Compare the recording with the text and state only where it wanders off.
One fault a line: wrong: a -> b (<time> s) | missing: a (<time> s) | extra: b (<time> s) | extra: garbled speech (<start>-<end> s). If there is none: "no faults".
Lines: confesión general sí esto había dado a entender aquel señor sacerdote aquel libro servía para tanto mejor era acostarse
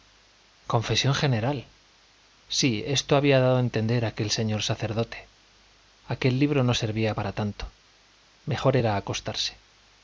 extra: no (6.6 s)